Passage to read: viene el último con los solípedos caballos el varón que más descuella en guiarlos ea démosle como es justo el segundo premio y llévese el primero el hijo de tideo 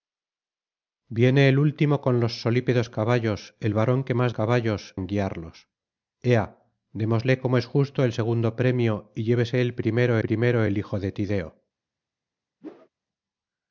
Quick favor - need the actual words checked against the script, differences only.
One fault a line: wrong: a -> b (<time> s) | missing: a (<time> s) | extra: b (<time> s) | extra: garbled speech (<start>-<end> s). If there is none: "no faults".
wrong: descuella -> caballos (4.3 s)
extra: primero (10.2 s)